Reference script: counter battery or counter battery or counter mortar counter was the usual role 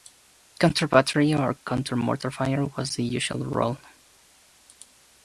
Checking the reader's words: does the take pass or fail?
fail